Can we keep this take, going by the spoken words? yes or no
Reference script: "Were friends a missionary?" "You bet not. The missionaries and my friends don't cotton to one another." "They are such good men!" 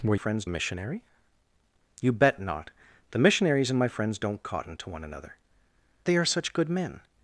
yes